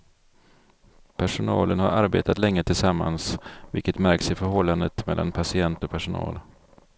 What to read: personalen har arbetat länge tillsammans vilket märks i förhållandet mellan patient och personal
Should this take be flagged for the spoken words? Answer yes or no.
no